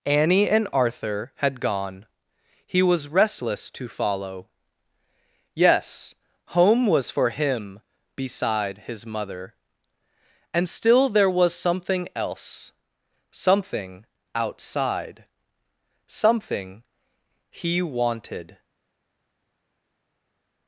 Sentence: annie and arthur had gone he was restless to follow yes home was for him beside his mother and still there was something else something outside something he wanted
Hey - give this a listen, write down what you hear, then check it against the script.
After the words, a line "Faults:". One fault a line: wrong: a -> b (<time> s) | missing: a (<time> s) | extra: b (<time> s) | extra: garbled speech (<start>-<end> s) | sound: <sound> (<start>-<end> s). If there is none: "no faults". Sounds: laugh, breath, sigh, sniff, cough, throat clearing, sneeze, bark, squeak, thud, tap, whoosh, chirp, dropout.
annie and arthur had gone he was restless to follow yes home was for him beside his mother and still there was something else something outside something he wanted
Faults:
no faults